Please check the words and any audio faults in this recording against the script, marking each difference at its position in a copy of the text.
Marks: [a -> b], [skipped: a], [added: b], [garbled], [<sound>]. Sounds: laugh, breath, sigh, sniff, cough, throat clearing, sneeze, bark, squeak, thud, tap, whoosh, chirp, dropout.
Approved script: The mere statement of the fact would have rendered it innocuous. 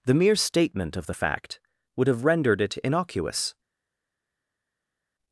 The mere statement of the fact would have rendered it innocuous.